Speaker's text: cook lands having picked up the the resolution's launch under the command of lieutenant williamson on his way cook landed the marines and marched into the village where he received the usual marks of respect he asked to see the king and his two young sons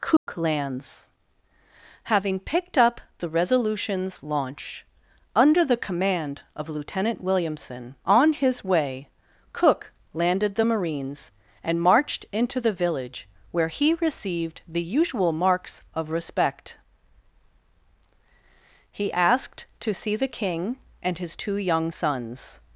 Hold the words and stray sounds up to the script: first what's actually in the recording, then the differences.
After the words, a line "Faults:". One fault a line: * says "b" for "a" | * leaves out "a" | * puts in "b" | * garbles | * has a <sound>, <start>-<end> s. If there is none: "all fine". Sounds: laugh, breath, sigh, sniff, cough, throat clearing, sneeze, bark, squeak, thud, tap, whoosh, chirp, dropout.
cook lands having picked up the resolution's launch under the command of lieutenant williamson on his way cook landed the marines and marched into the village where he received the usual marks of respect he asked to see the king and his two young sons
Faults:
* has a dropout, 0.2-0.3 s
* leaves out "the"